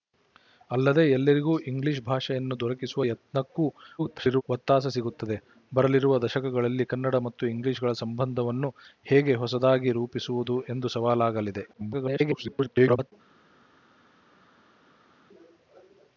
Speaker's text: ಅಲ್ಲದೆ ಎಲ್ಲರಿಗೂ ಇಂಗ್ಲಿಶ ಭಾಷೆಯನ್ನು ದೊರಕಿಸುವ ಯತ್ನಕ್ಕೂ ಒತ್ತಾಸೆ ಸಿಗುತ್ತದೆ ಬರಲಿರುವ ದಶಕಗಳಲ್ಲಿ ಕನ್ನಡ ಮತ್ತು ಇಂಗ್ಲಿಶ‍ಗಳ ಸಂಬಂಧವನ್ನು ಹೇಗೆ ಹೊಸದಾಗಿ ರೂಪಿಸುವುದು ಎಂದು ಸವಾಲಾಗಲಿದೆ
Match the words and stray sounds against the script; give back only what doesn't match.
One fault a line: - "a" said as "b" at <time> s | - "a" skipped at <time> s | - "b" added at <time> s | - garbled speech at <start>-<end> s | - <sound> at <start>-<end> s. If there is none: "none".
- garbled speech at 4.0-4.4 s
- garbled speech at 11.7-13.1 s